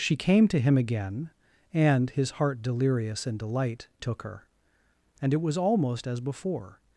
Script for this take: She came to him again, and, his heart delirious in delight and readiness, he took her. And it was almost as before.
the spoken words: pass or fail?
fail